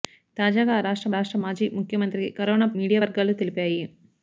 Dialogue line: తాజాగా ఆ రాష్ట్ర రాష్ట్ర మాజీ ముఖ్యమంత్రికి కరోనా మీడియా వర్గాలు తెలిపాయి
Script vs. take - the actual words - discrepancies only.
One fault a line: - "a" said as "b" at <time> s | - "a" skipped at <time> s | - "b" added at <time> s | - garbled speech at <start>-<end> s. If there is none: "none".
none